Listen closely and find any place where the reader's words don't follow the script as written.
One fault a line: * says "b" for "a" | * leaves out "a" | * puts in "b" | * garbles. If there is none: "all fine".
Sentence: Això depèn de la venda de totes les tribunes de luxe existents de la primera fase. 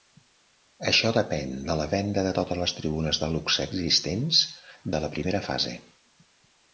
all fine